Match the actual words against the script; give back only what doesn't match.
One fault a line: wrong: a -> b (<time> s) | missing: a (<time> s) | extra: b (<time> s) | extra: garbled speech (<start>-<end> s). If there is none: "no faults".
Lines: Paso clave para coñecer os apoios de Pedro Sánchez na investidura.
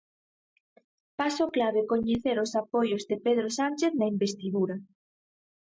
missing: para (1.8 s)